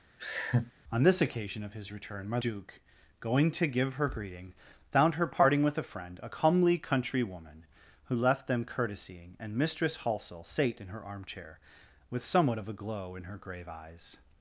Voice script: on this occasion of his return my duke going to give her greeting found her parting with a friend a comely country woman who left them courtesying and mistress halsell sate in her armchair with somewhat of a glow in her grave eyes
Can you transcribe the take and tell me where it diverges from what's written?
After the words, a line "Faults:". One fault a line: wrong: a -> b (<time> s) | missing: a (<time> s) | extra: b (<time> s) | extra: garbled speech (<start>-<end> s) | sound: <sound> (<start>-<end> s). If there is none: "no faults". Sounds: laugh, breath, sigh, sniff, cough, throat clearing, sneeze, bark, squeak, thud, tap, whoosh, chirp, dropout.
on this occasion of his return my duke going to give her greeting found her parting with a friend a comely country woman who left them courtesying and mistress halsell sate in her armchair with somewhat of a glow in her grave eyes
Faults:
sound: laugh (0.2-0.7 s)